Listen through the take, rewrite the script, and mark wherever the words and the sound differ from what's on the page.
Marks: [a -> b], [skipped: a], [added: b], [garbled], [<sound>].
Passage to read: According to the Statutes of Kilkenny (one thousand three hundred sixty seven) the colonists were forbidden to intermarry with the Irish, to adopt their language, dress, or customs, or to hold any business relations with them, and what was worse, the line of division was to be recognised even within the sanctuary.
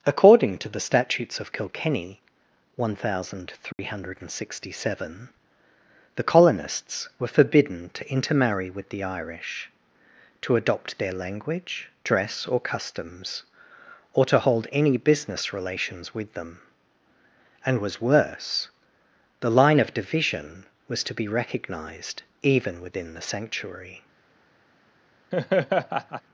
According to the Statutes of Kilkenny (one thousand three [dropout] hundred sixty seven) the colonists were forbidden to intermarry with the Irish, to adopt their language, dress, or customs, or to hold any business relations with them, and [skipped: what] was worse, the line of division was to be recognised even within the sanctuary. [laugh]